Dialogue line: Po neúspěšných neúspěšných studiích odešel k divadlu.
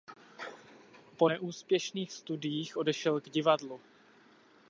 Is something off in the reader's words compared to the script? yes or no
yes